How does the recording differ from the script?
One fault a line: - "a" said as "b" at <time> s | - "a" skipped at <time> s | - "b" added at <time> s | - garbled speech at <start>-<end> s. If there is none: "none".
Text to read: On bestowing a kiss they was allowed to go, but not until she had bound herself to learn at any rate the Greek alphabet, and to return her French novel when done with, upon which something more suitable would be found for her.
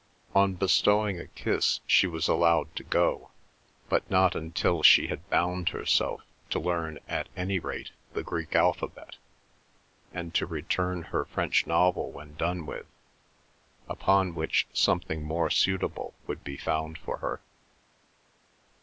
- "they" said as "she" at 1.9 s